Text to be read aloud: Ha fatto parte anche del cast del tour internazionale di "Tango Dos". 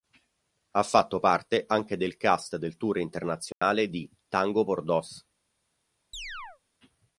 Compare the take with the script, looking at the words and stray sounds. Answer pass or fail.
fail